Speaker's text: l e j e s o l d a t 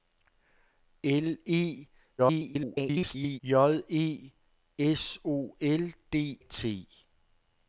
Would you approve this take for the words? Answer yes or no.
no